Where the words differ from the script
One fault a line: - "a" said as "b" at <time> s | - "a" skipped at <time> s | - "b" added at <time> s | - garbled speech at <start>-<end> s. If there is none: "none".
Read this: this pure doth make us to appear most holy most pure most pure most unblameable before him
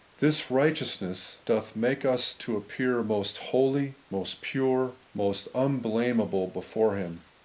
- "pure" said as "righteousness" at 0.5 s
- "pure most" skipped at 5.5 s